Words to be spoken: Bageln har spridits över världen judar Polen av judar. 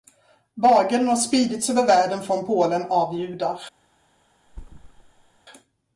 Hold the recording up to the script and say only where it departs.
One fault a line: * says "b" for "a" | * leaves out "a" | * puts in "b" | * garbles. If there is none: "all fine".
* says "från" for "judar"